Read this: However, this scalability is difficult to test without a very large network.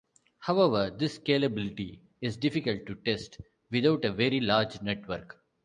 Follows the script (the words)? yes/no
yes